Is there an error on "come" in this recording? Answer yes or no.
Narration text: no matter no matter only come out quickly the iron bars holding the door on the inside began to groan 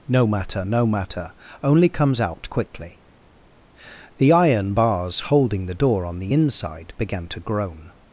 yes